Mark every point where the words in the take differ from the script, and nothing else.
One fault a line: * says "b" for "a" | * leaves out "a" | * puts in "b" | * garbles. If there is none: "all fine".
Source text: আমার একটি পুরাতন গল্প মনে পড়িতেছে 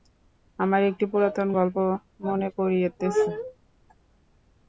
all fine